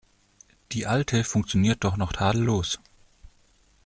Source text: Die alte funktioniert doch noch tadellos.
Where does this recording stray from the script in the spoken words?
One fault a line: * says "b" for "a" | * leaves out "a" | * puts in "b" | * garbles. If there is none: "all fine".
all fine